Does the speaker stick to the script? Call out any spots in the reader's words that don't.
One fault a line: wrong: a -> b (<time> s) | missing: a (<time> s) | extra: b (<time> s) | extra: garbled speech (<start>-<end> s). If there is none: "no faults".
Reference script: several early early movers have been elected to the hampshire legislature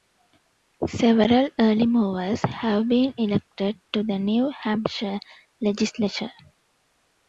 missing: early (1.9 s)
extra: new (4.2 s)